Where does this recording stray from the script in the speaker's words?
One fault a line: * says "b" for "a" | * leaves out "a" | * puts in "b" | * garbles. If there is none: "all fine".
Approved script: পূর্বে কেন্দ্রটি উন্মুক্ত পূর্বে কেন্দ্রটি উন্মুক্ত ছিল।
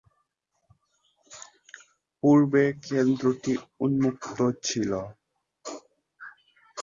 * leaves out "পূর্বে কেন্দ্রটি উন্মুক্ত"